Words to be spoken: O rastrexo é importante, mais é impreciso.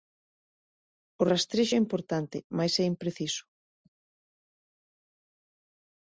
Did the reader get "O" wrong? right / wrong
right